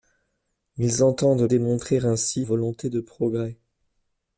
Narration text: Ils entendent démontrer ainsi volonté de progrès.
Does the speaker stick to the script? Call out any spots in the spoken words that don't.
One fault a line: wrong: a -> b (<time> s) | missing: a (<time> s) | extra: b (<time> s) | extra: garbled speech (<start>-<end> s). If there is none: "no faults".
no faults